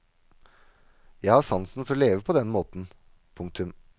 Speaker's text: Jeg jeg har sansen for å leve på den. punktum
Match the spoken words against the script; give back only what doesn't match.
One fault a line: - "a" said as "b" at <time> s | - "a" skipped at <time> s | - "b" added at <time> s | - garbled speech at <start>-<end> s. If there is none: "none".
- "jeg" skipped at 1.4 s
- "måten" added at 2.5 s